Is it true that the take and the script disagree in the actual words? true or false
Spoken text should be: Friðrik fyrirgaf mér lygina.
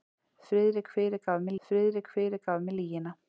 true